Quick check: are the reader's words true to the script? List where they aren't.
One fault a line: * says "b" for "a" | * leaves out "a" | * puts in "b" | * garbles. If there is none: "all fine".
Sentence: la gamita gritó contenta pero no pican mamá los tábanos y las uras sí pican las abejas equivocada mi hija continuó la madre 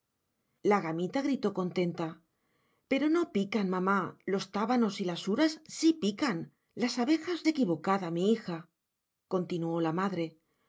all fine